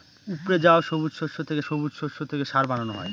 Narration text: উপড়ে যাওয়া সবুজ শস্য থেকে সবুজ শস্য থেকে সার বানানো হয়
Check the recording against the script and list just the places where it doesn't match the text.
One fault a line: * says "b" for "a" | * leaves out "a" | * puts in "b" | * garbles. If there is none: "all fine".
all fine